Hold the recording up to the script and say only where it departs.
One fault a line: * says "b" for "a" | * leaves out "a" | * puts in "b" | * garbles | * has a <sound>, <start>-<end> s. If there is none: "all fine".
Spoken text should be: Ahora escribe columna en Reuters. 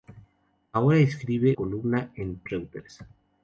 all fine